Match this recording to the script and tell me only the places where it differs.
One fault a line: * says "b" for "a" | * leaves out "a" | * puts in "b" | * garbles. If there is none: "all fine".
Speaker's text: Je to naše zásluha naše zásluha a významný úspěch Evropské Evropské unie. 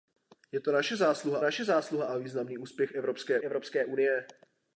all fine